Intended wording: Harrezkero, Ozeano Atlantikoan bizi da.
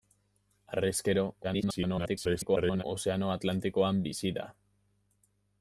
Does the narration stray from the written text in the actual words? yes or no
yes